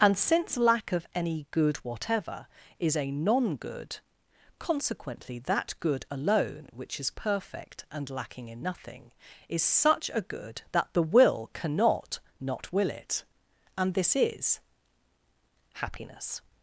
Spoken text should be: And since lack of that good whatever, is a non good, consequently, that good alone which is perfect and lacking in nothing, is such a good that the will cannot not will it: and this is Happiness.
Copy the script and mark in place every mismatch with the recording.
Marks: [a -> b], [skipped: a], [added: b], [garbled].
And since lack of [that -> any] good whatever, is a non good, consequently, that good alone which is perfect and lacking in nothing, is such a good that the will cannot not will it: and this is Happiness.